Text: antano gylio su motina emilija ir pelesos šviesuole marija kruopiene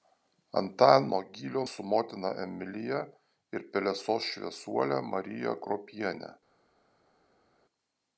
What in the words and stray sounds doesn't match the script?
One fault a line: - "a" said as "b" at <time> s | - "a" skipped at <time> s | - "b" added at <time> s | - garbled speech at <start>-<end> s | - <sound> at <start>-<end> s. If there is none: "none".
none